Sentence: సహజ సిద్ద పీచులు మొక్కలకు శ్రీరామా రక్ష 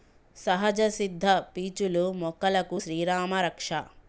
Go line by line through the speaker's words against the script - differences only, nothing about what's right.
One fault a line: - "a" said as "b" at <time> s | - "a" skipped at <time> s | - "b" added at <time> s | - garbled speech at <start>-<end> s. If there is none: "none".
none